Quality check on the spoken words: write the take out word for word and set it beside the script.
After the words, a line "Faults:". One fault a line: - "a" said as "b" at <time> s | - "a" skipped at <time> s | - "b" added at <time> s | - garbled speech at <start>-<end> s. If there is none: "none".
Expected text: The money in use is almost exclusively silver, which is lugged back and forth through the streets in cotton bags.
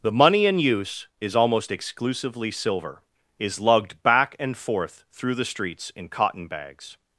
The money in use is almost exclusively silver, is lugged back and forth through the streets in cotton bags.
Faults:
- "which" skipped at 3.0 s